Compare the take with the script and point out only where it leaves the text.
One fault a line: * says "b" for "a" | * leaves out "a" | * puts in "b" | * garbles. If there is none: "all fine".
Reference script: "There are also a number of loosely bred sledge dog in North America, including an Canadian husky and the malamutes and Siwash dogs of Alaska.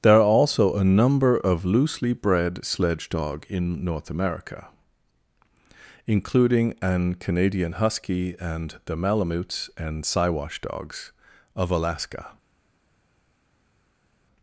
all fine